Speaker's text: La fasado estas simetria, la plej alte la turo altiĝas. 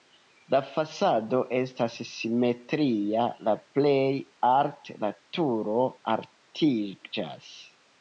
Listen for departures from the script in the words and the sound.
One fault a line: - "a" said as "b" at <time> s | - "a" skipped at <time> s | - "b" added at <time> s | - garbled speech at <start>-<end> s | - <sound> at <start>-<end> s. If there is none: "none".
none